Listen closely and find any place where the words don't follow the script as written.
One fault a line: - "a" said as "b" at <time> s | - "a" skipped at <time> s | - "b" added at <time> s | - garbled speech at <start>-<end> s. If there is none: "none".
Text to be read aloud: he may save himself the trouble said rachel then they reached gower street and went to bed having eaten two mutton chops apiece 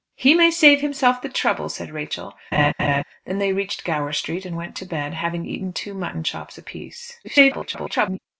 - garbled speech at 7.2-8.2 s